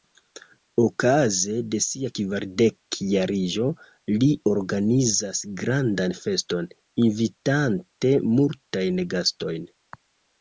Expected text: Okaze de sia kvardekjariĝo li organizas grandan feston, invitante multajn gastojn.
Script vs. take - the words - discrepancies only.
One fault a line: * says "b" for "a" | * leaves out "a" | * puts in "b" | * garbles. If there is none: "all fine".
all fine